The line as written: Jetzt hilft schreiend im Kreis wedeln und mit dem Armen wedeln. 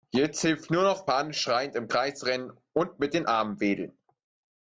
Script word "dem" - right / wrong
wrong